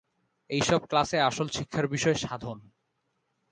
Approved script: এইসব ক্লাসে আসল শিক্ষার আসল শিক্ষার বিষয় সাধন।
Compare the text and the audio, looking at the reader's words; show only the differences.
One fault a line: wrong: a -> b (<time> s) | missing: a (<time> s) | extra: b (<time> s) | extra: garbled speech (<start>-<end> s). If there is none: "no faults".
missing: আসল শিক্ষার (1.9 s)